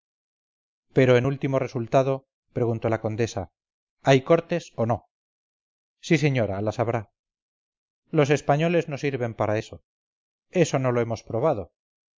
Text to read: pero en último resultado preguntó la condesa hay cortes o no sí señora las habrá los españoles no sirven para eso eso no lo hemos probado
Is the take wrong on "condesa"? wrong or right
right